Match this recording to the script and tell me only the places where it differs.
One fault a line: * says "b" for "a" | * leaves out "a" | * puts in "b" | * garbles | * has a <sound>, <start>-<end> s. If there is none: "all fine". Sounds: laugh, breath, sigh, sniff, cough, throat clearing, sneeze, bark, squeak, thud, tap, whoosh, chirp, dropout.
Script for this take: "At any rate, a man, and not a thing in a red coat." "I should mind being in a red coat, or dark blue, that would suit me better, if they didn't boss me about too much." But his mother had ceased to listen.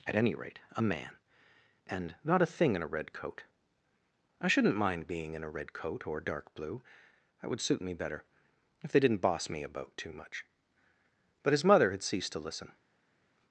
* says "shouldn't" for "should"